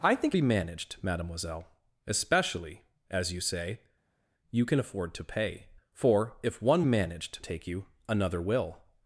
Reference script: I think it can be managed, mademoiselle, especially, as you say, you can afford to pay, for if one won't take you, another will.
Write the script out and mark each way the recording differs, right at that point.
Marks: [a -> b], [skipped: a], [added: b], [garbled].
I think [skipped: it can] be managed, mademoiselle, especially, as you say, you can afford to pay, for if one [won't -> managed] take you, another will.